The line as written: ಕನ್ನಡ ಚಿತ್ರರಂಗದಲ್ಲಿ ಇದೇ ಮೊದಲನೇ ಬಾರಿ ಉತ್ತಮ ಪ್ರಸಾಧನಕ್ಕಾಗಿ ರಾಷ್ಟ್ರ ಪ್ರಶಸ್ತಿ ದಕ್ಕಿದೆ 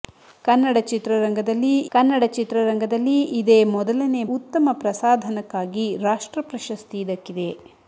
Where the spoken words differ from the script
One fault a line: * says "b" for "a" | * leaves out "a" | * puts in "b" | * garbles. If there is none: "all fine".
* puts in "ಕನ್ನಡ ಚಿತ್ರರಂಗದಲ್ಲಿ"
* leaves out "ಬಾರಿ"